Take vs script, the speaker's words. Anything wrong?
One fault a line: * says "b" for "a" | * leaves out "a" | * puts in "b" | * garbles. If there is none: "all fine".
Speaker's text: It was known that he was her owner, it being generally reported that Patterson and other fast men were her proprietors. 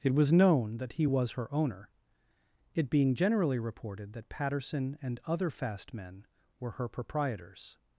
all fine